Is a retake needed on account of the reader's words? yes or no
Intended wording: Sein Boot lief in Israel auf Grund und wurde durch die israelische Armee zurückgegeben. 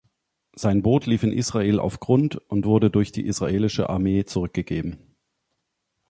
no